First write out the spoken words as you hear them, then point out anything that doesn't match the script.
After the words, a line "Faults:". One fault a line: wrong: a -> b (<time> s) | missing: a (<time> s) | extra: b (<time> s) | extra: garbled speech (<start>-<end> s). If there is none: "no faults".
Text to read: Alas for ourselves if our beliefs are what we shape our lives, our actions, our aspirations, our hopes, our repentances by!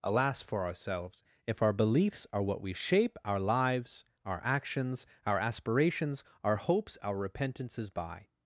Alas for ourselves if our beliefs are what we shape our lives, our actions, our aspirations, our hopes, our repentances by!
Faults:
no faults